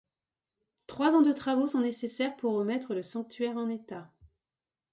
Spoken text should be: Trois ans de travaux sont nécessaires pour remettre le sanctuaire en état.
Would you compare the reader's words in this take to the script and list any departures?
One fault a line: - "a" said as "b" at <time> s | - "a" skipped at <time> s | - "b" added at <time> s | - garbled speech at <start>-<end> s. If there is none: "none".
none